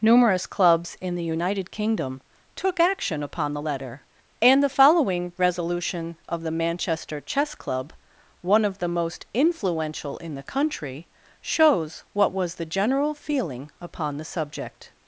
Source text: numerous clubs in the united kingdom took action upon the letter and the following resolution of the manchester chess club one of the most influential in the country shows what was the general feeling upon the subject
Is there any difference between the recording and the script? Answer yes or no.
no